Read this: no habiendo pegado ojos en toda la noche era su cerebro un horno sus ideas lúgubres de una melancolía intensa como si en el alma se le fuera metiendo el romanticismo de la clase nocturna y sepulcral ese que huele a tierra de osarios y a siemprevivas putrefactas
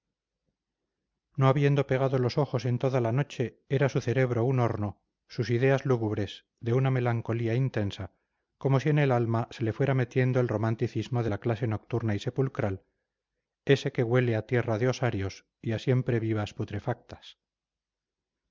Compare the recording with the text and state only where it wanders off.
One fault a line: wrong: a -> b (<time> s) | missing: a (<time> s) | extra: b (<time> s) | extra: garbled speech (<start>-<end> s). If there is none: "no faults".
extra: los (2.2 s)